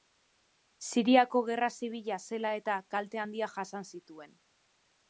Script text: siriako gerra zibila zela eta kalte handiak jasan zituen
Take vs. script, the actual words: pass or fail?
pass